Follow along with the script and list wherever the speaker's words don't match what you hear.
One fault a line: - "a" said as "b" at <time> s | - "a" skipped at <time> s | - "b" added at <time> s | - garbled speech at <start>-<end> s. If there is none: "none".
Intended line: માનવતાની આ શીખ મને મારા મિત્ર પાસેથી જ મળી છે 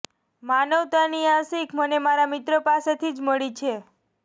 none